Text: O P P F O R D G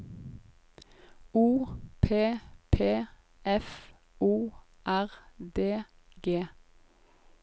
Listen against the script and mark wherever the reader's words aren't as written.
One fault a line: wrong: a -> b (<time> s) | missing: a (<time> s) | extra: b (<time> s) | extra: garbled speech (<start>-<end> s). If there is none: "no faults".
no faults